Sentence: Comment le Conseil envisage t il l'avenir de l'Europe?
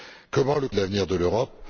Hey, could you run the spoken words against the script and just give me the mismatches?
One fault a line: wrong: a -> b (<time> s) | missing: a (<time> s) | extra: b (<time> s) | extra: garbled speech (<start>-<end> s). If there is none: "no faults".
missing: Conseil envisage t (0.7 s)